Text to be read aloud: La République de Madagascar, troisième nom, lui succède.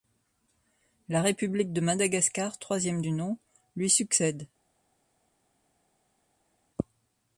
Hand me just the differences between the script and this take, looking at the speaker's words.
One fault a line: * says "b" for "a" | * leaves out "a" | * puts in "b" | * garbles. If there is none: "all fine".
* puts in "du"